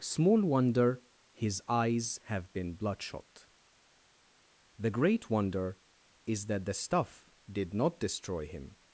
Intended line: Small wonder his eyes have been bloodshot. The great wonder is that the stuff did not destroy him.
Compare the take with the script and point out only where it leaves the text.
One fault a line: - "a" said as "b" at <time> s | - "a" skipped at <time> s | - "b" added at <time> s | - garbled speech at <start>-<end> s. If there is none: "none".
none